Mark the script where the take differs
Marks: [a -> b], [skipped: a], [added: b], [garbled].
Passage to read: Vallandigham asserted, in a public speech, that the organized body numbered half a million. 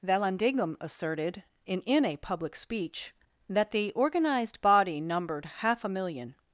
Vallandigham asserted, in [added: in] a public speech, that the organized body numbered half a million.